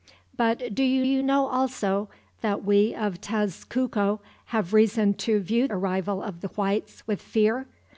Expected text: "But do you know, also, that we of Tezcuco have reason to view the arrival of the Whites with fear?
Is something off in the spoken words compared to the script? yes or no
yes